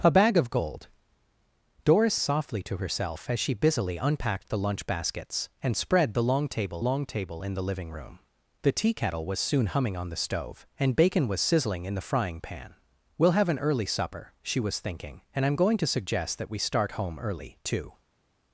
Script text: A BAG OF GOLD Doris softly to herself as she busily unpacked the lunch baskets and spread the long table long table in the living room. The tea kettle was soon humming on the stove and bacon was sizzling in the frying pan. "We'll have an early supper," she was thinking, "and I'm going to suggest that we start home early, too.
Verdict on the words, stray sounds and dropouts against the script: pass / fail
pass